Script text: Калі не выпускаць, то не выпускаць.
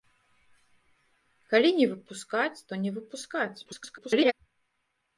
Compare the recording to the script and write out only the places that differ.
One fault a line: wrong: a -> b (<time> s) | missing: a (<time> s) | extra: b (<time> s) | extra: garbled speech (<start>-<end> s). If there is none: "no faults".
extra: garbled speech (3.6-4.3 s)